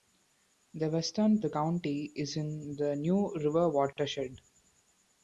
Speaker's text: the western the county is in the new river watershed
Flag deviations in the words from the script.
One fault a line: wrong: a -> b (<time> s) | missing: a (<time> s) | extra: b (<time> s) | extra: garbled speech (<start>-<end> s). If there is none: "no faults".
no faults